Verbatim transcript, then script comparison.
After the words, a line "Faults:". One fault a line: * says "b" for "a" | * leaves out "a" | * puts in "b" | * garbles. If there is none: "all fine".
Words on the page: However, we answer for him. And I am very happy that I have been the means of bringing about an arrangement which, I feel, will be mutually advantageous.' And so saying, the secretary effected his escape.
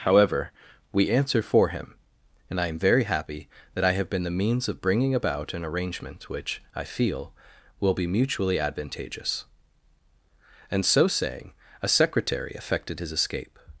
However, we answer for him. And I am very happy that I have been the means of bringing about an arrangement which, I feel, will be mutually advantageous.' And so saying, a secretary effected his escape.
Faults:
* says "a" for "the"